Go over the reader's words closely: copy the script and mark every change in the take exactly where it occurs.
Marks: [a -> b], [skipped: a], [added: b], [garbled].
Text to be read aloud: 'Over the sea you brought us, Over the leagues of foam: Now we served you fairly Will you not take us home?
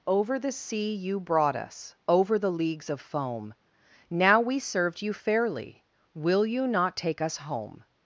'Over the sea you brought us, Over the leagues of foam: Now we served you fairly Will you not take us home?